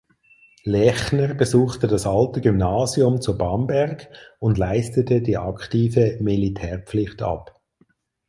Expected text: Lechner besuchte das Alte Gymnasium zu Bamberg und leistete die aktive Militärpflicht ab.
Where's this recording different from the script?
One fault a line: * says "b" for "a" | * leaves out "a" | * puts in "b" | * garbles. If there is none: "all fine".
all fine